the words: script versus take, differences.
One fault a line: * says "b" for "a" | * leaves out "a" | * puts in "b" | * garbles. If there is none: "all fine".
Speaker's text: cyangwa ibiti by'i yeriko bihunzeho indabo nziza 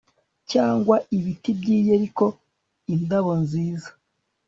* leaves out "bihunzeho"